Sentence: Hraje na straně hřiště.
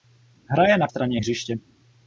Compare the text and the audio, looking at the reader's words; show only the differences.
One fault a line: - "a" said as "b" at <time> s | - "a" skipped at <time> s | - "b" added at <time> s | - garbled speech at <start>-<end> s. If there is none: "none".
none